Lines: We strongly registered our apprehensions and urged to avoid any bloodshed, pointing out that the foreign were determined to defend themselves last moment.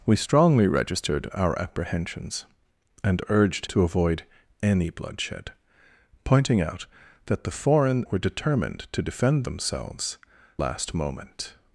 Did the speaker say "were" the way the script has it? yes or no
yes